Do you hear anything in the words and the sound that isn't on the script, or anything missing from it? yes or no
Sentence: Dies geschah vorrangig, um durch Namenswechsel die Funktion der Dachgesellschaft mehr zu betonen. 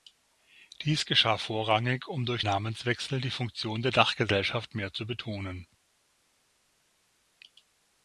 no